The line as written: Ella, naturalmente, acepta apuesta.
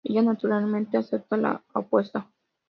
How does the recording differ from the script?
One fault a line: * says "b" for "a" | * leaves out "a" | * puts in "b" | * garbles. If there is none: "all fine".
* puts in "la"